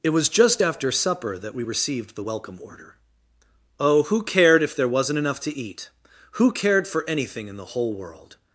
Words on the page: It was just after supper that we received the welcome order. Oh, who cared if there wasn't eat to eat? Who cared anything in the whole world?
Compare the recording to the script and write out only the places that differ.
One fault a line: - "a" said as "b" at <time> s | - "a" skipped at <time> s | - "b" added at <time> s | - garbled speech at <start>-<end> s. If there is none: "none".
- "eat" said as "enough" at 5.2 s
- "for" added at 6.9 s